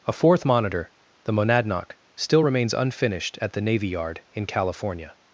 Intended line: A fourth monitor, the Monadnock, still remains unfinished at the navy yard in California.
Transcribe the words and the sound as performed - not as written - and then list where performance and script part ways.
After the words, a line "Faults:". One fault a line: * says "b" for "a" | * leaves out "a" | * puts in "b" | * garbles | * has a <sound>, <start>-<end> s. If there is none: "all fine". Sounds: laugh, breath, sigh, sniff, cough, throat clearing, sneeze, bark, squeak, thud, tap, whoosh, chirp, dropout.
A fourth monitor, the Monadnock, still remains unfinished at the navy yard in California.
Faults:
all fine